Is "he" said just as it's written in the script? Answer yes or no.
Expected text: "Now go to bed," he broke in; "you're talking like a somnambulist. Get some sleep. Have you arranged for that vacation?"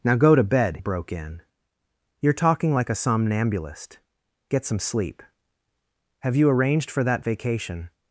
no